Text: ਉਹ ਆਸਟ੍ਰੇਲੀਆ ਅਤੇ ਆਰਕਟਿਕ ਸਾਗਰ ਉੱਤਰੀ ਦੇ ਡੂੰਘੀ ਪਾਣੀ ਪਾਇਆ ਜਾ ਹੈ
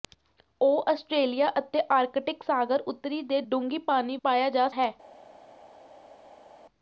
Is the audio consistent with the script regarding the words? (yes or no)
yes